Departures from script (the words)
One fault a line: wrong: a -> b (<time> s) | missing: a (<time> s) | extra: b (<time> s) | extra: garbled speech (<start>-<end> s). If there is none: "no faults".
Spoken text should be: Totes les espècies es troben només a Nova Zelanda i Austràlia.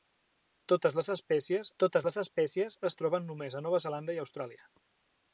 extra: totes les espècies (1.8 s)